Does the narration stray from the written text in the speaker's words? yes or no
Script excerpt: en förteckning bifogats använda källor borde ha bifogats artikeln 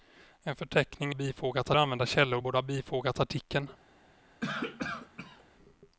no